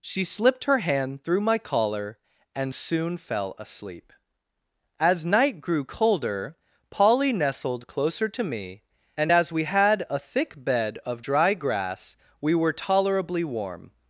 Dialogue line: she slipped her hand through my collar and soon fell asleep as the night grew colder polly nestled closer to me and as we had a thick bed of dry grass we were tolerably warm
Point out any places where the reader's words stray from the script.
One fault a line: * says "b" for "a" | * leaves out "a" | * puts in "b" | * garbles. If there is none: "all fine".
* leaves out "the"